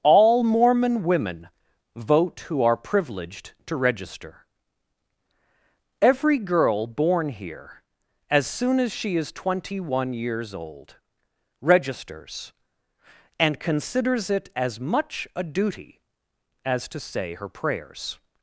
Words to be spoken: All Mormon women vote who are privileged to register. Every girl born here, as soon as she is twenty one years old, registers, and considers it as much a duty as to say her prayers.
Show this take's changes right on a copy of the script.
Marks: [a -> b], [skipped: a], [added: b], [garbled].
All Mormon women vote who are privileged to register. Every girl born here, as soon as she is twenty one years old, registers, and considers it as much a duty as to say her prayers.